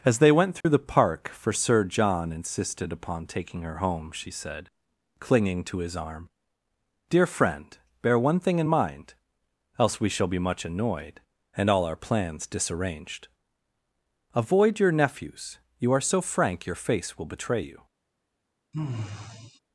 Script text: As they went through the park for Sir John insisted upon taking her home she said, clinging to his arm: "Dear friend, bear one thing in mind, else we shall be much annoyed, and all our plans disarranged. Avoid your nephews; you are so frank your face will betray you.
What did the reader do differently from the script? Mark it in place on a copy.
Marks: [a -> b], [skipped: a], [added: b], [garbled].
As they went through the park for Sir John insisted upon taking her home she said, clinging to his arm: "Dear friend, bear one thing in mind, else we shall be much annoyed, and all our plans disarranged. Avoid your nephews; you are so frank your face will betray you.